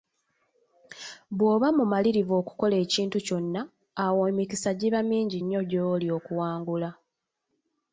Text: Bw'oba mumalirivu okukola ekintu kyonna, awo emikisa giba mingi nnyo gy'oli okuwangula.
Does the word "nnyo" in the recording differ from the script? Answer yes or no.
no